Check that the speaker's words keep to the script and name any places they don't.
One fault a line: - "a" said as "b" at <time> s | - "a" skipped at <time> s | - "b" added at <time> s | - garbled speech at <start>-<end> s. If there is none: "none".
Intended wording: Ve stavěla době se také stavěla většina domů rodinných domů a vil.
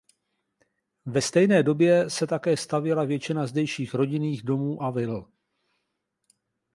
- "stavěla" said as "stejné" at 1.2 s
- "domů" said as "zdejších" at 3.5 s